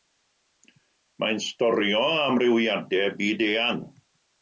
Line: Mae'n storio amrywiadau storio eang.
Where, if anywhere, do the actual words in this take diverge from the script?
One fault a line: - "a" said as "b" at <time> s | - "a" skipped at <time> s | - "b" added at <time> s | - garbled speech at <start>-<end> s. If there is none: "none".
- "storio" said as "byd" at 3.2 s